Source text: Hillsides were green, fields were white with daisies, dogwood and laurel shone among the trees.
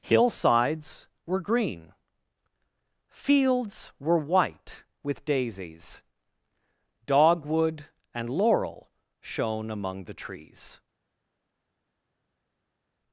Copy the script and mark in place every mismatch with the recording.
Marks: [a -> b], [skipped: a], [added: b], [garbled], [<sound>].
Hillsides were green, fields were white with daisies, dogwood and laurel shone among the trees.